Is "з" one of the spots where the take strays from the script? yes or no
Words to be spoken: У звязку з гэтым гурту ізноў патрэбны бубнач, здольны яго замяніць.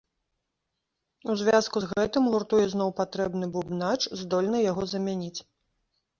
no